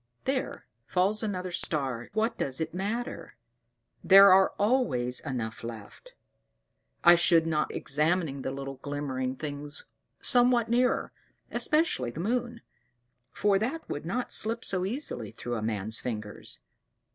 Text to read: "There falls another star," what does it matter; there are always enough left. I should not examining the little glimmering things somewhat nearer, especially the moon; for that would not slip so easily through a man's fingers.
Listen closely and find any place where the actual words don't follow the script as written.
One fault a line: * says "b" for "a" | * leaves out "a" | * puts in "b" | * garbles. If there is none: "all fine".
all fine